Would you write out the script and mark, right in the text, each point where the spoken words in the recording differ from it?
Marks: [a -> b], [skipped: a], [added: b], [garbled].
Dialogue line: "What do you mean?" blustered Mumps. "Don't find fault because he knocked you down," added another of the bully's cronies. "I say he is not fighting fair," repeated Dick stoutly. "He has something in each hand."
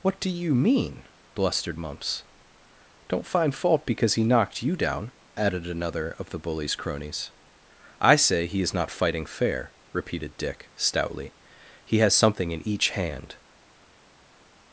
"What do you mean?" blustered Mumps. "Don't find fault because he knocked you down," added another of the bully's cronies. "I say he is not fighting fair," repeated Dick stoutly. "He has something in each hand."